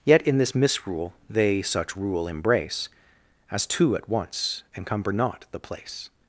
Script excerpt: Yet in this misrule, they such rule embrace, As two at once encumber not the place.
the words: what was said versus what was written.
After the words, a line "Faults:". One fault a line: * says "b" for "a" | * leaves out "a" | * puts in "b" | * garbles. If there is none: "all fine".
Yet in this misrule, they such rule embrace, As two at once encumber not the place.
Faults:
all fine